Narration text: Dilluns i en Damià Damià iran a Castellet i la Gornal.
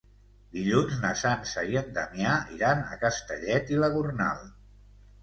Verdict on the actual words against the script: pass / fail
fail